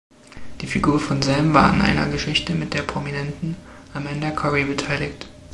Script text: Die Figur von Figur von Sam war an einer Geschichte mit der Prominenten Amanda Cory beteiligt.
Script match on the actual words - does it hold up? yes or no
no